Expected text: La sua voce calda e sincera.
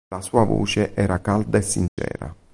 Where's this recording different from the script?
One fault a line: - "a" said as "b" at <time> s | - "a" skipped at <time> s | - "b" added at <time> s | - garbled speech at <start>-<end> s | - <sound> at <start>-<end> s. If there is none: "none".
- "era" added at 0.9 s
- dropout at 1.9-2.0 s